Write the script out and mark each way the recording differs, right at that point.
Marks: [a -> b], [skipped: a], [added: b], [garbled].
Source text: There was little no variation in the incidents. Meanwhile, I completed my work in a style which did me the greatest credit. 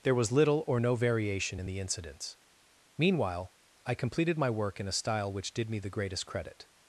There was little [added: or] no variation in the incidents. Meanwhile, I completed my work in a style which did me the greatest credit.